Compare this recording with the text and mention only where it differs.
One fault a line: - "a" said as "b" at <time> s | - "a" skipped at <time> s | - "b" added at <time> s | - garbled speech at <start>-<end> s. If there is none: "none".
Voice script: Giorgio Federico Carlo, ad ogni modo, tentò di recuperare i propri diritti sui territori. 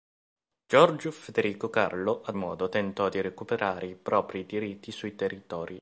- "ogni" skipped at 2.4 s